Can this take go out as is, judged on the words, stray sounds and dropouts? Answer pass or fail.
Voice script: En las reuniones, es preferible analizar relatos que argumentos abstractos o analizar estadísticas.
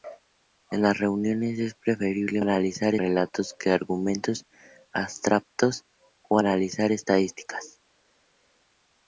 pass